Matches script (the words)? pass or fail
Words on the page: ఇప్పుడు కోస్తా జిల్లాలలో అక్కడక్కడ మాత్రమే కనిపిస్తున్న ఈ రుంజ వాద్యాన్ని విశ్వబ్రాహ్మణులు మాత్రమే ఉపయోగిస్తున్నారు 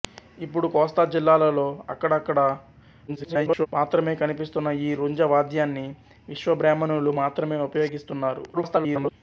fail